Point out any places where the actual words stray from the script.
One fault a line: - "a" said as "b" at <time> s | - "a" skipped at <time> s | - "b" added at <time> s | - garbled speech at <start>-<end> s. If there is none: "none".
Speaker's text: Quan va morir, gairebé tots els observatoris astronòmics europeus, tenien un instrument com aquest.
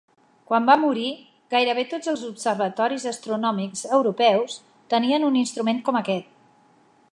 none